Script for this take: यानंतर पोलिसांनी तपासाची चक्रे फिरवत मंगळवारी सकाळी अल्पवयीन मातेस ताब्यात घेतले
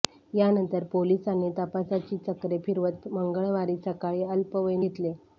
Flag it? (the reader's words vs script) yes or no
yes